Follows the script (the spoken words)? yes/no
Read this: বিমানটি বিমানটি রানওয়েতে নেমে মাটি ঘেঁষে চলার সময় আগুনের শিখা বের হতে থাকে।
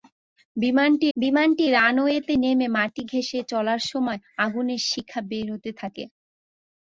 yes